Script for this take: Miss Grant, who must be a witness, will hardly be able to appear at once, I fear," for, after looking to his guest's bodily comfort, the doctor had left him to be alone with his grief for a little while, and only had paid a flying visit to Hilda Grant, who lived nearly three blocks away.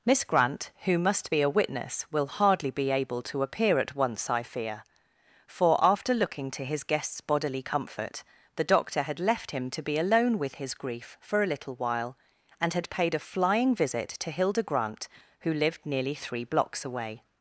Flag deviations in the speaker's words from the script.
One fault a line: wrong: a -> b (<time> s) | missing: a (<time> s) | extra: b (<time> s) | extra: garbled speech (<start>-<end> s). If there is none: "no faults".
missing: only (12.7 s)